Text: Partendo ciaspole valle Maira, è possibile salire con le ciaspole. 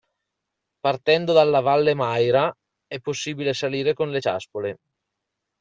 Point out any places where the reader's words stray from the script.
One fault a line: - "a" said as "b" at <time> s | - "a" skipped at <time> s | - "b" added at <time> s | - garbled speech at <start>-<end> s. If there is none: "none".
- "ciaspole" said as "dalla" at 1.3 s